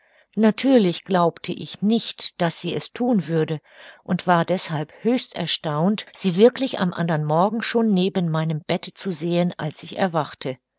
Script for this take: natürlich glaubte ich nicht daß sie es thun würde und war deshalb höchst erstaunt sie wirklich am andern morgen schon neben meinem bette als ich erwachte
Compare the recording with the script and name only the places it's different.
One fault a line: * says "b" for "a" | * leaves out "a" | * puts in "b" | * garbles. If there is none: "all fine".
* puts in "zu sehen"